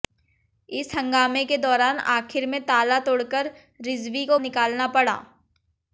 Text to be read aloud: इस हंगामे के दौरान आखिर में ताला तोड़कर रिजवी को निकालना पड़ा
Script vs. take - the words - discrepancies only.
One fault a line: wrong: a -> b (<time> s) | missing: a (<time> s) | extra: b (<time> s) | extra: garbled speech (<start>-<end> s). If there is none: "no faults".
no faults